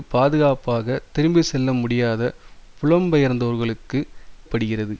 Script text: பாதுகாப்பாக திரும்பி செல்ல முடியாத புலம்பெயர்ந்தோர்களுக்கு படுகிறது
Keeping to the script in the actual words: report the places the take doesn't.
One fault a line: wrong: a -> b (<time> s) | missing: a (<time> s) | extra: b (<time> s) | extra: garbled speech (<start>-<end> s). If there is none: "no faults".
no faults